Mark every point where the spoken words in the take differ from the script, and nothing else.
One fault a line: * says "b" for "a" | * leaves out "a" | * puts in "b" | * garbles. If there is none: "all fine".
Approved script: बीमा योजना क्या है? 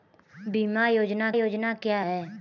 * puts in "योजना"